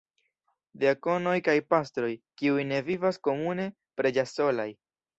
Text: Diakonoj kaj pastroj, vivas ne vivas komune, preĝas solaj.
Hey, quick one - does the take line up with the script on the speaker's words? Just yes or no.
no